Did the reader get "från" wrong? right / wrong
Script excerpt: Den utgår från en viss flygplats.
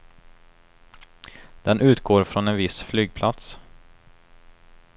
right